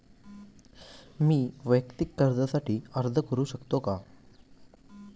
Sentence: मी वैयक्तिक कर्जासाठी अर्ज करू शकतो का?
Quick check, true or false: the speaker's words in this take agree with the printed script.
true